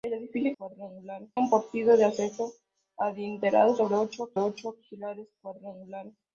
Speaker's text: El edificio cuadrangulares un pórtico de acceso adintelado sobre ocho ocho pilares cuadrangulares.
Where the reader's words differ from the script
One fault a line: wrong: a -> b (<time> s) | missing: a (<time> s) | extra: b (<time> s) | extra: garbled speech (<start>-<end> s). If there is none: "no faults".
no faults